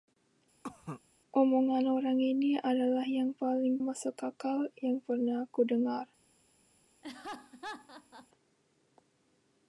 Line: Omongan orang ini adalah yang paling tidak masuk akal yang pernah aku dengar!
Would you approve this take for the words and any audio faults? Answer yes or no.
no